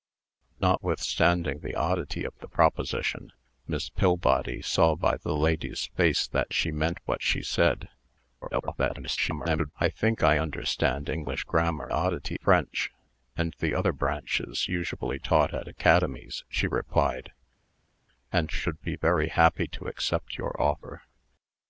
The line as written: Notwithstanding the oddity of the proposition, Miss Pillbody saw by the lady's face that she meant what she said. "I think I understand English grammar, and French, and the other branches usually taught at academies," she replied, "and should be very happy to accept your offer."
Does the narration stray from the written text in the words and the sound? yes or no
yes